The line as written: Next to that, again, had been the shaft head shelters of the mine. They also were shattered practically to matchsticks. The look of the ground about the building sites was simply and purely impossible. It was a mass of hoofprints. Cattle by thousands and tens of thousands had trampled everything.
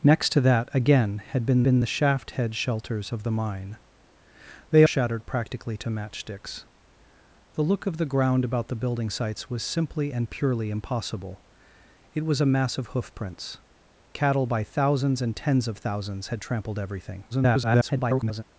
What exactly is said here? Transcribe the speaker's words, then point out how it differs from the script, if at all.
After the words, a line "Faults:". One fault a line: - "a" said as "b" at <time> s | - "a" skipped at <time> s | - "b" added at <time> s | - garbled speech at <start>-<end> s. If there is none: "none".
Next to that, again, had been been the shaft head shelters of the mine. They shattered practically to matchsticks. The look of the ground about the building sites was simply and purely impossible. It was a mass of hoofprints. Cattle by thousands and tens of thousands had trampled everything. [garbled]
Faults:
- "been" added at 1.6 s
- "also were" skipped at 4.8 s
- garbled speech at 17.3-18.4 s